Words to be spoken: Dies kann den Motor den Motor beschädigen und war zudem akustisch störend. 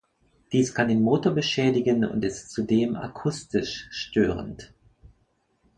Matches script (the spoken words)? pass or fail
fail